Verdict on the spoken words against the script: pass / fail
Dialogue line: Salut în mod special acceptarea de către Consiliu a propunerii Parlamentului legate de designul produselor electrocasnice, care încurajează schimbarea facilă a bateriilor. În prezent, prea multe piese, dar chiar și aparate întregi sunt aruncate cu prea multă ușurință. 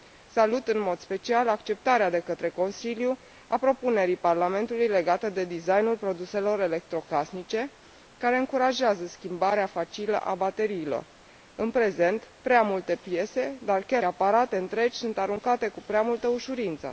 fail